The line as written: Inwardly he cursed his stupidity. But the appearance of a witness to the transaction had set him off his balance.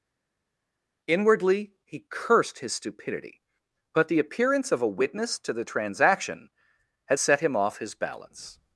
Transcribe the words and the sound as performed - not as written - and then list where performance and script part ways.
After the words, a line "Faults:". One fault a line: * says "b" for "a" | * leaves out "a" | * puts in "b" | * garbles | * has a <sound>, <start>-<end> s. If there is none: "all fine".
Inwardly he cursed his stupidity. But the appearance of a witness to the transaction had set him off his balance.
Faults:
all fine